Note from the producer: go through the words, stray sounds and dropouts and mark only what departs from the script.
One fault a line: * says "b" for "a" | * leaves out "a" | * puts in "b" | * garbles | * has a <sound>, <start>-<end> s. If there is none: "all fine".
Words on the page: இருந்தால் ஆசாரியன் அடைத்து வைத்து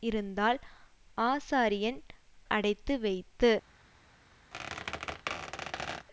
* has a squeak, 4.5-6.1 s